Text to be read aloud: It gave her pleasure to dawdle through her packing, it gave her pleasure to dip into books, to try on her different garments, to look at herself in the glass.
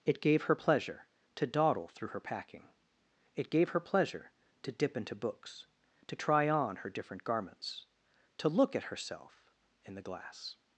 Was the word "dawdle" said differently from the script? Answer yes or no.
no